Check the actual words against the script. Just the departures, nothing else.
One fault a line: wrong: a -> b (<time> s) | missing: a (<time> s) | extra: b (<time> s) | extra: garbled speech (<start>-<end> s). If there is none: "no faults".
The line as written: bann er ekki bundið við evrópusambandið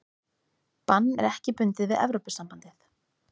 no faults